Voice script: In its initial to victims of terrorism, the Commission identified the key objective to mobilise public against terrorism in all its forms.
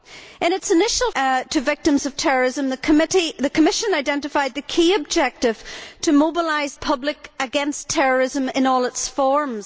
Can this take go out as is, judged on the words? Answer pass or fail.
pass